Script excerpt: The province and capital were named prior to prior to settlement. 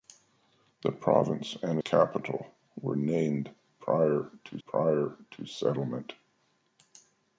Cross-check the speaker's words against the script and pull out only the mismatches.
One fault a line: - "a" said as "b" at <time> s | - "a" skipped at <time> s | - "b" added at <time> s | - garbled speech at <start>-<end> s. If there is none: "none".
none